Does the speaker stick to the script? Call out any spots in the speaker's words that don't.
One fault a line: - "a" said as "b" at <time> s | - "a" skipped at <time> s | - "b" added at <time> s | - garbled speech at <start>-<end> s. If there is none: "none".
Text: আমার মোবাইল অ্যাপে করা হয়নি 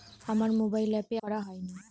none